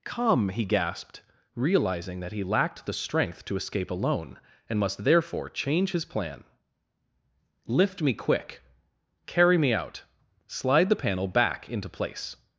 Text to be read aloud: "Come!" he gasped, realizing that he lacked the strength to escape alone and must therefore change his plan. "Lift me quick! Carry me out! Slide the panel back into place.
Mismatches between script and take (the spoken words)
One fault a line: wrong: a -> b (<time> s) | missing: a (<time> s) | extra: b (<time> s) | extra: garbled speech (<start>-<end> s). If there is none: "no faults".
no faults